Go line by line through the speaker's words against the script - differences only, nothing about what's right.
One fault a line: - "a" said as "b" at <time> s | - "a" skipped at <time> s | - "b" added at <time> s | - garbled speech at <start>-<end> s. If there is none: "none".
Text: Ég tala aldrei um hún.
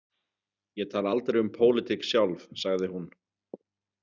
- "pólitík sjálf sagði" added at 1.5 s